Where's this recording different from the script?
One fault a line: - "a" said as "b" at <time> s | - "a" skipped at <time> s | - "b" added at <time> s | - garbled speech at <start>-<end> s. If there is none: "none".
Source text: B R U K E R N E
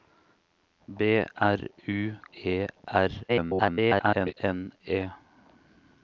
- "K" skipped at 2.2 s
- garbled speech at 3.3-4.3 s